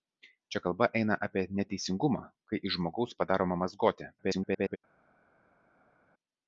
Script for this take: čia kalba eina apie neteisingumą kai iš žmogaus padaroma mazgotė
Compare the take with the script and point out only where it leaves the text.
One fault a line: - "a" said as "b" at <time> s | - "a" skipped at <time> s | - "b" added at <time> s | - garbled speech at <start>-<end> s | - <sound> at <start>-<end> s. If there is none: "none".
- garbled speech at 4.2-4.8 s